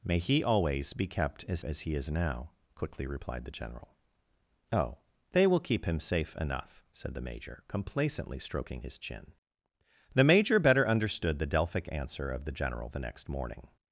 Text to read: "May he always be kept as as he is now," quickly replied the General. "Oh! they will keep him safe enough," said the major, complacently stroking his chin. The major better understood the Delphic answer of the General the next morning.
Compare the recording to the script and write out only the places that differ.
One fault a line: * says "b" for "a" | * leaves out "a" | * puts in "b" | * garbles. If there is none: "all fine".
all fine